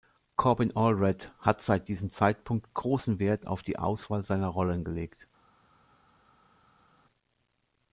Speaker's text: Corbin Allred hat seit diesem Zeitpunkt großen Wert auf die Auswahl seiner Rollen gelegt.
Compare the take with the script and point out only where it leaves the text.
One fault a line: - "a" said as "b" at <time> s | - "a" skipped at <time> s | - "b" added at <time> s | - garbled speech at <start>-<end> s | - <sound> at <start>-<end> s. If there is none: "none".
none